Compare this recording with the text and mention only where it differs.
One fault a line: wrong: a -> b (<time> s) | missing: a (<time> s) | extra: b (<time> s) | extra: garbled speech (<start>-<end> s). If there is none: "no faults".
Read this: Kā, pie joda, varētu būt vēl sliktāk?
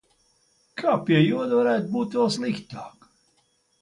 no faults